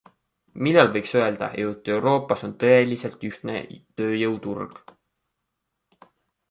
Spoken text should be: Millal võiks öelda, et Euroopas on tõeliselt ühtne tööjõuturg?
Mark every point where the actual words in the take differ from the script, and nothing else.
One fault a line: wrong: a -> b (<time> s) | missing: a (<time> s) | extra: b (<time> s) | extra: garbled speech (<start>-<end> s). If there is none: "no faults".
no faults